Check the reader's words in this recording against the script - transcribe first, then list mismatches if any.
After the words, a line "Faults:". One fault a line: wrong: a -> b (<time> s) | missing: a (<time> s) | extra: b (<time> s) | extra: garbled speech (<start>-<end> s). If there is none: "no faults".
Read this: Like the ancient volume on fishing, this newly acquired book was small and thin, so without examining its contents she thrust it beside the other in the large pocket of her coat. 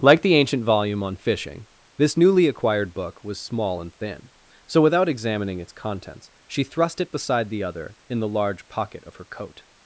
Like the ancient volume on fishing, this newly acquired book was small and thin, so without examining its contents she thrust it beside the other in the large pocket of her coat.
Faults:
no faults